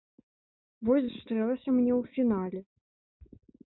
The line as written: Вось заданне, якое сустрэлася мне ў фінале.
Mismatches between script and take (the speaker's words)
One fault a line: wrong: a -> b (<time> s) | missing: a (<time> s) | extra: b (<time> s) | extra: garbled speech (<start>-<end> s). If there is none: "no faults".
missing: заданне якое (1.1 s)